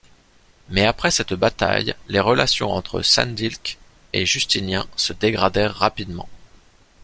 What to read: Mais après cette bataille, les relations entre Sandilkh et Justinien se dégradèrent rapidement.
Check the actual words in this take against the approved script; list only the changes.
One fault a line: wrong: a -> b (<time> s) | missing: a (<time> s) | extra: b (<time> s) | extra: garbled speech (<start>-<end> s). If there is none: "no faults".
no faults